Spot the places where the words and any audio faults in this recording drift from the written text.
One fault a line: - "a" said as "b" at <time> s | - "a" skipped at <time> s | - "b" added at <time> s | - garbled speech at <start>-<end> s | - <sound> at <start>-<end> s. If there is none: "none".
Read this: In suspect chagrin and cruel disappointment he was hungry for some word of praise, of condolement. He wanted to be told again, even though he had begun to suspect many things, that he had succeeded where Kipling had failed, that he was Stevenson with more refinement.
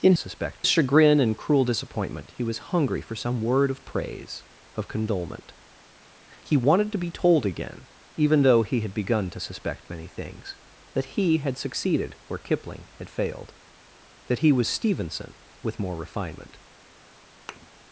- thud at 17.5-17.7 s